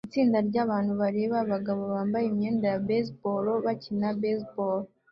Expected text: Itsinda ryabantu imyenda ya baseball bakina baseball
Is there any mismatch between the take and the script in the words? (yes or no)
yes